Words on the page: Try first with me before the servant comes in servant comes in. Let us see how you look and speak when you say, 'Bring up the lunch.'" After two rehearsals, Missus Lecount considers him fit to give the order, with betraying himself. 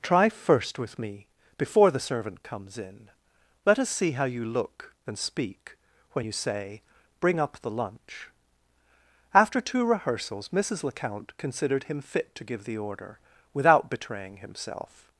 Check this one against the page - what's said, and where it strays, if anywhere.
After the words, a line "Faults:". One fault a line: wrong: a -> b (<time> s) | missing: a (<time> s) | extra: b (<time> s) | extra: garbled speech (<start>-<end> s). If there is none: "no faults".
Try first with me before the servant comes in. Let us see how you look and speak when you say, 'Bring up the lunch.'" After two rehearsals, Missus Lecount considered him fit to give the order, without betraying himself.
Faults:
missing: servant comes in (3.1 s)
wrong: considers -> considered (11.4 s)
wrong: with -> without (13.5 s)